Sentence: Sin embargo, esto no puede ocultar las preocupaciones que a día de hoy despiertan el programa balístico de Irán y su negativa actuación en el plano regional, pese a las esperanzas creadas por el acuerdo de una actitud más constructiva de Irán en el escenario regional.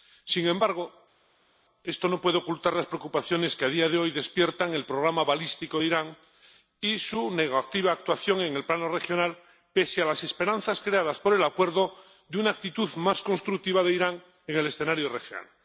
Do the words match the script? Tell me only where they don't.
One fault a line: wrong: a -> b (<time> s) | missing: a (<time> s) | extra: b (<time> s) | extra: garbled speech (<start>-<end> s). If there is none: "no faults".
no faults